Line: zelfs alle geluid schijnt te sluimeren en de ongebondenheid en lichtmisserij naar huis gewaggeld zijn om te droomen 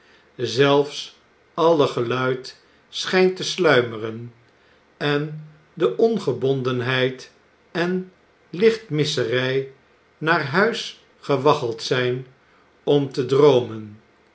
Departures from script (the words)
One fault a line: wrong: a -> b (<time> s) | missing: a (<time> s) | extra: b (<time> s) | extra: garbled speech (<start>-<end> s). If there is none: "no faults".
no faults